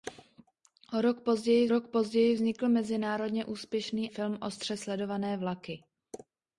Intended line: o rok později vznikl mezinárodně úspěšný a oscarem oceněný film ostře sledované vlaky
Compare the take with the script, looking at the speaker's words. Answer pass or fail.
fail